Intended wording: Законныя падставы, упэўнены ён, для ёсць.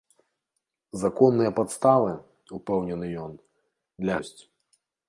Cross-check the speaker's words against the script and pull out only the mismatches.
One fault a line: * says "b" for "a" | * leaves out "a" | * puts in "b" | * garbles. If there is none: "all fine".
all fine